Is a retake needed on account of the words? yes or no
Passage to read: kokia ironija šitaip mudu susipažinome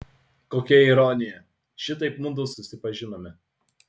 no